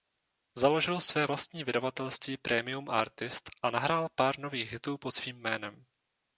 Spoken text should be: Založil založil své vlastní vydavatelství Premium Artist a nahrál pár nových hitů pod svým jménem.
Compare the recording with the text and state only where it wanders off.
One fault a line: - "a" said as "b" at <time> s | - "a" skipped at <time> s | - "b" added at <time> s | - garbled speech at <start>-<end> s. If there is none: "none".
- "založil" skipped at 1.0 s